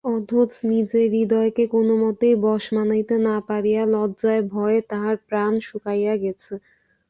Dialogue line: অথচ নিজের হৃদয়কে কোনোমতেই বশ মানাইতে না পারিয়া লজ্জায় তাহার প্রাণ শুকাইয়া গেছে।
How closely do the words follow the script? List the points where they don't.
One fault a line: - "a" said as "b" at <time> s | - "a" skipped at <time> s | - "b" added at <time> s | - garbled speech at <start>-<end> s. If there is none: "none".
- "ভয়ে" added at 4.5 s